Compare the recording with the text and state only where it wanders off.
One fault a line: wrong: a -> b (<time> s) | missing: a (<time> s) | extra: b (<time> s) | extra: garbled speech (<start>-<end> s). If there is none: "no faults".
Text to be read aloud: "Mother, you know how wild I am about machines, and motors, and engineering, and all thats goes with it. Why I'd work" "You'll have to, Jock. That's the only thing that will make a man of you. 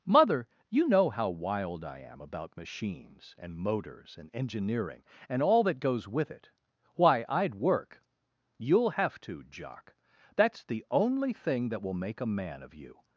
wrong: thats -> that (5.6 s)